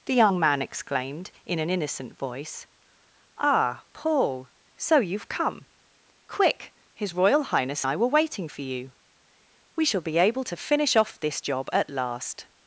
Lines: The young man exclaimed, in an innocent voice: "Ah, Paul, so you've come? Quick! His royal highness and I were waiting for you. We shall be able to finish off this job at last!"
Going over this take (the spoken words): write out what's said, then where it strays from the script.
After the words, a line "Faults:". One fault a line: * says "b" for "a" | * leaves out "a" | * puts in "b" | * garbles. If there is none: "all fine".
The young man exclaimed, in an innocent voice: "Ah, Paul, so you've come? Quick! His royal highness I were waiting for you. We shall be able to finish off this job at last!"
Faults:
* leaves out "and"